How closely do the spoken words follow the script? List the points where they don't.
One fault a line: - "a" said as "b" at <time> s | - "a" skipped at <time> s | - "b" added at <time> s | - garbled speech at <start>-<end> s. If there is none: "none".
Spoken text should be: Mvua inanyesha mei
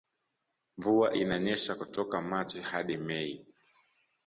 - "kutoka machi hadi" added at 1.7 s